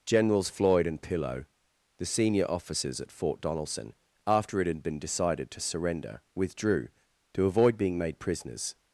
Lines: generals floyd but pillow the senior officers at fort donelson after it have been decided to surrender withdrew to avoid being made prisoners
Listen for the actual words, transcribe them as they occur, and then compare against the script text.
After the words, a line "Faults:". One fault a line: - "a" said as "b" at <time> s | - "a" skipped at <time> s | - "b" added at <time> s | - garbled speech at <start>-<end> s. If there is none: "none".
generals floyd and pillow the senior officers at fort donelson after it had been decided to surrender withdrew to avoid being made prisoners
Faults:
- "but" said as "and" at 0.9 s
- "have" said as "had" at 4.7 s